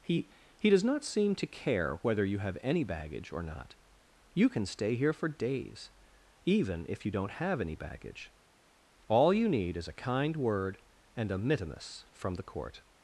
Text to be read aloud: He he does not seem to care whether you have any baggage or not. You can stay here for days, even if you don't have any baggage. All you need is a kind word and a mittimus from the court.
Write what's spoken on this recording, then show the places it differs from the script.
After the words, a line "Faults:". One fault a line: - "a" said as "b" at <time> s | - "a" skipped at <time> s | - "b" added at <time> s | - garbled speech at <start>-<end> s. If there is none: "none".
He he does not seem to care whether you have any baggage or not. You can stay here for days, even if you don't have any baggage. All you need is a kind word and a mittimus from the court.
Faults:
none